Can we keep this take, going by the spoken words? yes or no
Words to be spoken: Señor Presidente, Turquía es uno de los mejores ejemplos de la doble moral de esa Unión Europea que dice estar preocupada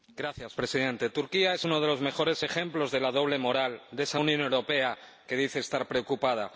yes